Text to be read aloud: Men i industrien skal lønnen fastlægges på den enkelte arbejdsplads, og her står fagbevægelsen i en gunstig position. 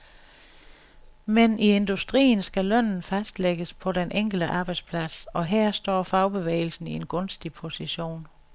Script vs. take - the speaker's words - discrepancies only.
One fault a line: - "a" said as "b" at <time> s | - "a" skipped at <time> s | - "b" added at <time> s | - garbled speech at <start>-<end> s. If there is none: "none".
none